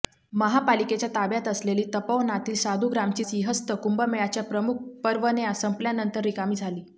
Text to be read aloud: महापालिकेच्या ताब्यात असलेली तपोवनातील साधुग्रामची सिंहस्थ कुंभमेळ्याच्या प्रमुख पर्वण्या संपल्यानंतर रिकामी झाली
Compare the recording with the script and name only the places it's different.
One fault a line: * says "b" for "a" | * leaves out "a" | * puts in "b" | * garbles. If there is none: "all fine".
all fine